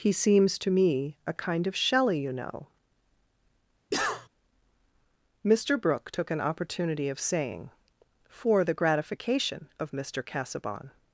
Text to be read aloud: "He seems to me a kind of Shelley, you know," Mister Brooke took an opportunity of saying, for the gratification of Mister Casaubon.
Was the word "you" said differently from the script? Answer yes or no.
no